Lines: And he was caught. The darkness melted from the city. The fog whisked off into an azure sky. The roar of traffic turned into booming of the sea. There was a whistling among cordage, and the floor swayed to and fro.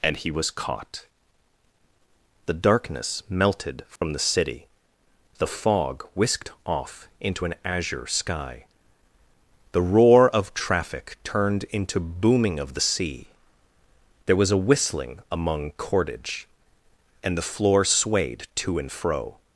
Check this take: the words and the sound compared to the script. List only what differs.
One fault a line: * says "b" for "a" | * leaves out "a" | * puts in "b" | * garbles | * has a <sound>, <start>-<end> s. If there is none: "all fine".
* has a dropout, 4.0-4.0 s